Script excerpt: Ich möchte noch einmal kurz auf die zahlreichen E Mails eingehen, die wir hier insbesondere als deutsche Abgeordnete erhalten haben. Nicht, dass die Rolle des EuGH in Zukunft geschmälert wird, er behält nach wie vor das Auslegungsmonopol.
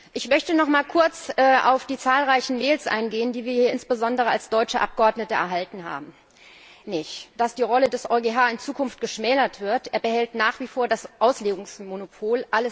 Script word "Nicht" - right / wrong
right